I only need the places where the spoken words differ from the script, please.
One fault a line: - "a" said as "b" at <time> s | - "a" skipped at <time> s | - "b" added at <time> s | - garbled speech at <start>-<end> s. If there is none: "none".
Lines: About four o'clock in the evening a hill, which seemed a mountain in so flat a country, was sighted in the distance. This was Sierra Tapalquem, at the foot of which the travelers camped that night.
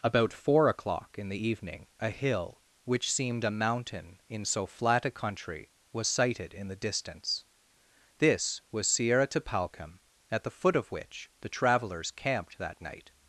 none